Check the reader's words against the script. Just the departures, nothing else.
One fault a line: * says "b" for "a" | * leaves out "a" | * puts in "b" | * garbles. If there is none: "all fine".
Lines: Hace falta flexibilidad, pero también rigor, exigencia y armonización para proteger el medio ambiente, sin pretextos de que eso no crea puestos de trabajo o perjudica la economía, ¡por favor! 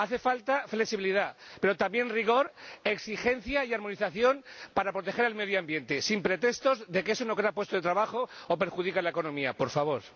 all fine